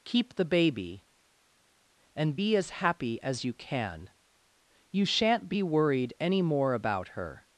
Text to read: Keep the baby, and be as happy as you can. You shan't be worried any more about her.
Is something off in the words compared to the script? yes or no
no